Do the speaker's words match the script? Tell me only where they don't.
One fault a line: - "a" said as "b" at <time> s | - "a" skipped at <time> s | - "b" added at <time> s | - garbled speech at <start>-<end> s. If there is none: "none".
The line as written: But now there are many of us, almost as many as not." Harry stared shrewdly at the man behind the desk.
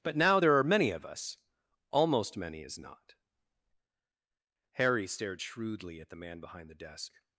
- "as" skipped at 2.4 s